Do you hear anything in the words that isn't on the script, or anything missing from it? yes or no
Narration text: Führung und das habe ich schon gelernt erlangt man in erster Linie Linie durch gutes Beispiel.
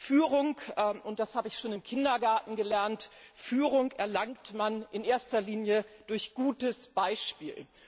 yes